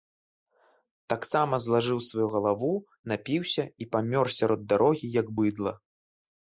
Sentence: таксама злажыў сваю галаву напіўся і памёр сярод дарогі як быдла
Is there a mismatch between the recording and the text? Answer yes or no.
no